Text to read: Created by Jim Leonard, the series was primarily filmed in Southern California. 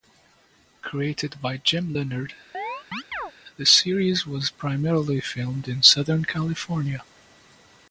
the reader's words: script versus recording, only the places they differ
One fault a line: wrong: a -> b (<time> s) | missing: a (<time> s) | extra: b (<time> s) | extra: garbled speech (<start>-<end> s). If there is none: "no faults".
no faults